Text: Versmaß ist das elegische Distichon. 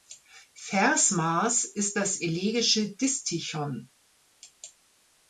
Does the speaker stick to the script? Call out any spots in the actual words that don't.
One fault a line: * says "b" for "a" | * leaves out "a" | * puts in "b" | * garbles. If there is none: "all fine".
all fine